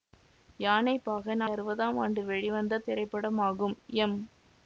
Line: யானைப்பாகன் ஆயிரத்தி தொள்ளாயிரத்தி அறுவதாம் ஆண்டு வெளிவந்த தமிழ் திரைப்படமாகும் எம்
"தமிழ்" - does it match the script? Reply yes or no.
no